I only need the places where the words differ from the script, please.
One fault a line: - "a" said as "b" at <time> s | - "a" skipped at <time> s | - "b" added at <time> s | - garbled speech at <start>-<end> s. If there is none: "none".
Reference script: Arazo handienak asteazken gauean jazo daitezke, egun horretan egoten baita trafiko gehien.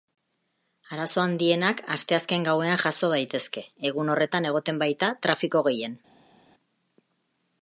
none